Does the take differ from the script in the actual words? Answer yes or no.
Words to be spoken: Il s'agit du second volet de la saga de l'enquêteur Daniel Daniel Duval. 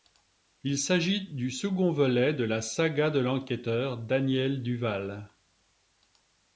yes